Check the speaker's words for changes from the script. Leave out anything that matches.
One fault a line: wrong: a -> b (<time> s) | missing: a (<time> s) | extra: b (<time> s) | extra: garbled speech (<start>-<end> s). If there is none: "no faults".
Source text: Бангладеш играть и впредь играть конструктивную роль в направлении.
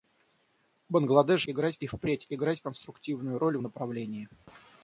no faults